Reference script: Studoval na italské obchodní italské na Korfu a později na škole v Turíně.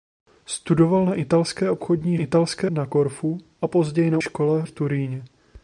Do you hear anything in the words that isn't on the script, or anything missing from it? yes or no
no